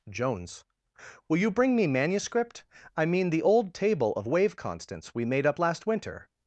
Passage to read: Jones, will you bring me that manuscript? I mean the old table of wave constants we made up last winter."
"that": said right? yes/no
no